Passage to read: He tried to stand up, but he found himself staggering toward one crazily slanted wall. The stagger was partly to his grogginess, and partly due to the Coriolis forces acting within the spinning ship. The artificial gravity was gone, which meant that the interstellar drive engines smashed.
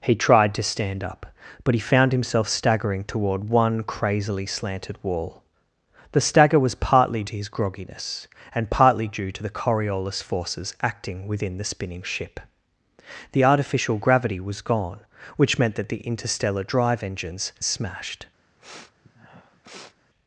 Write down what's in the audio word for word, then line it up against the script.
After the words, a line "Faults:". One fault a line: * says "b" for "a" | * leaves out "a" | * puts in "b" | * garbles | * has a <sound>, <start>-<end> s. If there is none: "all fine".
He tried to stand up, but he found himself staggering toward one crazily slanted wall. The stagger was partly to his grogginess, and partly due to the Coriolis forces acting within the spinning ship. The artificial gravity was gone, which meant that the interstellar drive engines smashed.
Faults:
* has a sniff, 18.6-20.0 s